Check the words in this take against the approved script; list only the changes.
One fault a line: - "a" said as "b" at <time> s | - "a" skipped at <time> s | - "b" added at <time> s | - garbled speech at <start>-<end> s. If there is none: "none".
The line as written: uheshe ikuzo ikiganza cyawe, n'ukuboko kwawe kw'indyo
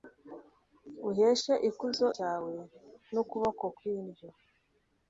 - "ikiganza" skipped at 2.1 s
- "kwawe" skipped at 3.6 s